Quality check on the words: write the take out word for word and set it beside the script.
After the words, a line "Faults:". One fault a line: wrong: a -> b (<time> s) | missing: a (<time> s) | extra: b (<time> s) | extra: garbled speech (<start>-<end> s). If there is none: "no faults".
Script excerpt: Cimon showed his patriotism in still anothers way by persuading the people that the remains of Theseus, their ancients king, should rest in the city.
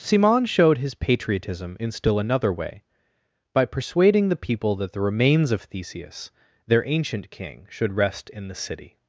Cimon showed his patriotism in still another way by persuading the people that the remains of Theseus, their ancient king, should rest in the city.
Faults:
wrong: anothers -> another (2.2 s)
wrong: ancients -> ancient (6.9 s)